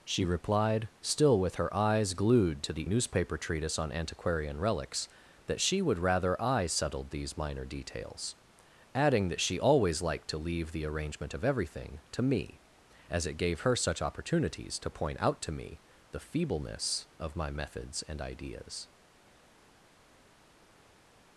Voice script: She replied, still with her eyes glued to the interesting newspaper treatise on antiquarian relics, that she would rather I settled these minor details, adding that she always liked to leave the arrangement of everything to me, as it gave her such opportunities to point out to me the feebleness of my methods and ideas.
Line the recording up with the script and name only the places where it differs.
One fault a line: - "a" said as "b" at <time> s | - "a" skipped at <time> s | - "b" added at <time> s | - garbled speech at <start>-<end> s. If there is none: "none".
- "interesting" skipped at 2.9 s